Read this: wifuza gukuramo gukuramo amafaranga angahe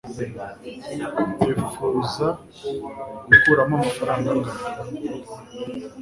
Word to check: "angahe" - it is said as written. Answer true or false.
true